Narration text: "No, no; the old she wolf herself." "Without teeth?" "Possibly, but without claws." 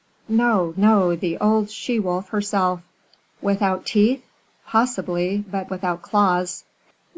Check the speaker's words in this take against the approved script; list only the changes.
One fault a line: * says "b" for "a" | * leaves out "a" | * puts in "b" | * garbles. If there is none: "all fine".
all fine